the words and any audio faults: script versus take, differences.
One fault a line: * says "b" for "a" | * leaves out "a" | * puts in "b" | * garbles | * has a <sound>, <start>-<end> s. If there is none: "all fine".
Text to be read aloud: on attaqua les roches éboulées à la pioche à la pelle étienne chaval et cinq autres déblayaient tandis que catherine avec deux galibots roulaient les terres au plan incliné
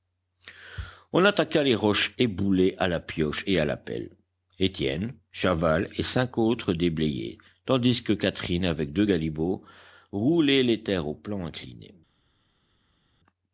* puts in "et"